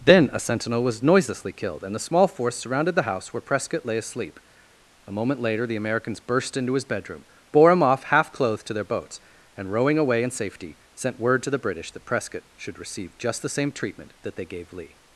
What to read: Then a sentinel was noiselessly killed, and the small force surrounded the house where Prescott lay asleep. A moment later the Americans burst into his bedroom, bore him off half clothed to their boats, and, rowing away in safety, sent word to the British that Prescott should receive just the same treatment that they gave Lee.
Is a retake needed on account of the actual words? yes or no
no